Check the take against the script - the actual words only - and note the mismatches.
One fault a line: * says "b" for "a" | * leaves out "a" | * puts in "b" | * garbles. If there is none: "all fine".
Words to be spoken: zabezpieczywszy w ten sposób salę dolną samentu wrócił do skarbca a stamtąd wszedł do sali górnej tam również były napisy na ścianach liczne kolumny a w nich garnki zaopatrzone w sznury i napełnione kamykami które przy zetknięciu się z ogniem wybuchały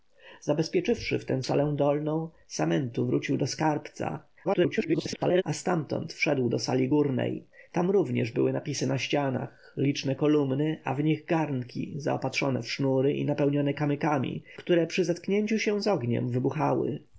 * leaves out "sposób"
* garbles